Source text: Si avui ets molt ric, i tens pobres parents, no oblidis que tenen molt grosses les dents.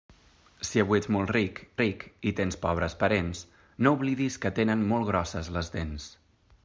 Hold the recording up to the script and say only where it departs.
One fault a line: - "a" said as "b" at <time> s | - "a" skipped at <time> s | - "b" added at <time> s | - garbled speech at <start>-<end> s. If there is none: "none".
- "ric" added at 1.8 s